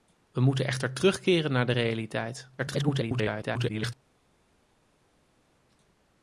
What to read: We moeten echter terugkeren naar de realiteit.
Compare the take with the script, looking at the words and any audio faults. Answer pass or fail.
fail